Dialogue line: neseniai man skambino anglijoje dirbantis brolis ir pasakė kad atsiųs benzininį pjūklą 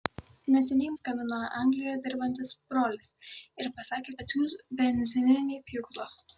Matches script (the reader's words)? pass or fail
fail